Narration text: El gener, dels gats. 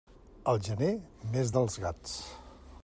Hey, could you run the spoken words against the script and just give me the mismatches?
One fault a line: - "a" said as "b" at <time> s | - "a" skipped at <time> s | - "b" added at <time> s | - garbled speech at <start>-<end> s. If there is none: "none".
- "mes" added at 1.4 s